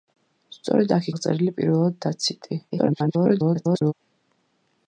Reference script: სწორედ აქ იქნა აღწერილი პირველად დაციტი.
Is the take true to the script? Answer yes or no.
no